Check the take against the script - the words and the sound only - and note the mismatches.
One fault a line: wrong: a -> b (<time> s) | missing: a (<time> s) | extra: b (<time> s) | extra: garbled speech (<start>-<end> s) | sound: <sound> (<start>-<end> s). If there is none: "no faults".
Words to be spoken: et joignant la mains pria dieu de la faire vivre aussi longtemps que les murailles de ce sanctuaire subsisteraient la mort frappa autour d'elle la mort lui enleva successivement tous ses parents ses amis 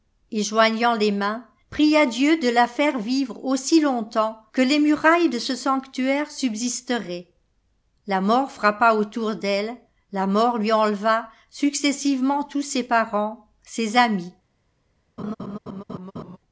wrong: la -> les (0.9 s)
sound: laugh (15.2-16.4 s)